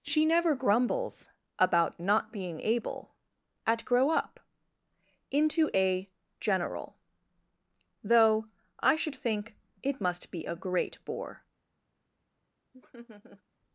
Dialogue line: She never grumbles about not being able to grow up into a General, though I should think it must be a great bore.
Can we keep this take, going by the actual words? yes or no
no